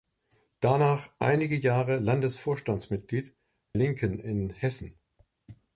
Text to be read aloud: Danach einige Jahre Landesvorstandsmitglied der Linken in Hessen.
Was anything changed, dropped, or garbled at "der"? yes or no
yes